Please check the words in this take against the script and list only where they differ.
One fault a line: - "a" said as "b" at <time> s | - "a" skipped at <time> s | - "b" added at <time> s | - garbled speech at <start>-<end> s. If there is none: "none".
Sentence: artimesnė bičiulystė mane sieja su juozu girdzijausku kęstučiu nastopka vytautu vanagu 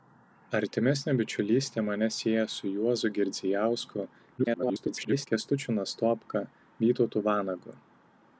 - garbled speech at 4.4-5.3 s